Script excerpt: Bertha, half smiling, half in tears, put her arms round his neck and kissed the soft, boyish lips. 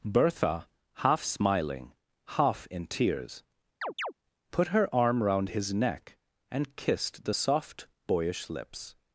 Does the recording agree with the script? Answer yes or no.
no